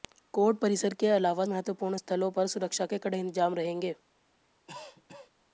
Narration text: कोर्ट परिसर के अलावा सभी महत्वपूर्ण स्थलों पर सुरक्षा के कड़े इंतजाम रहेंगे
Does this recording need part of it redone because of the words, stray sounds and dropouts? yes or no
yes